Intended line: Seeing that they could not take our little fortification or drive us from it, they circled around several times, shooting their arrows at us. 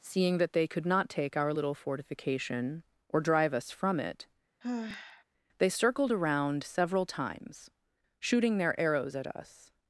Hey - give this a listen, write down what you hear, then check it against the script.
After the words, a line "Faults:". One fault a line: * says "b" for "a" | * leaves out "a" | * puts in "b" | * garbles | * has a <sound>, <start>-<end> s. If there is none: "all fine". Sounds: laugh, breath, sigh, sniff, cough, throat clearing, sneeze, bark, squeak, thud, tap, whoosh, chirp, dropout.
Seeing that they could not take our little fortification or drive us from it, they circled around several times, shooting their arrows at us.
Faults:
* has a sigh, 4.6-5.2 s